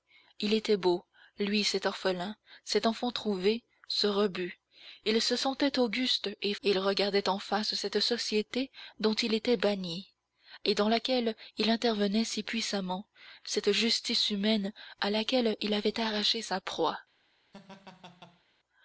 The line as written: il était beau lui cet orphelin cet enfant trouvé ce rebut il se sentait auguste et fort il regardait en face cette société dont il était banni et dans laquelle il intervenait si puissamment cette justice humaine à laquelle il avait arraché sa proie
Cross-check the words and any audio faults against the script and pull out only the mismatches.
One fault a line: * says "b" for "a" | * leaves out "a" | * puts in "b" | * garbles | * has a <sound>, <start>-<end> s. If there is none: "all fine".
* leaves out "fort"
* has a laugh, 17.5-18.4 s